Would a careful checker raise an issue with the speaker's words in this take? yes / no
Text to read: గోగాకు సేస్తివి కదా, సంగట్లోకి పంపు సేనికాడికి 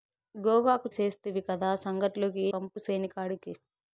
no